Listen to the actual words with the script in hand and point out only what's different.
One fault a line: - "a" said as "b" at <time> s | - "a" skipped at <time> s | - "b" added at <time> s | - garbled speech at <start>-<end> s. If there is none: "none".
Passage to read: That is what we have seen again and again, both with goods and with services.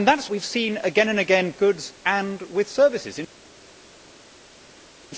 - "what" skipped at 0.3 s
- "both with" skipped at 1.5 s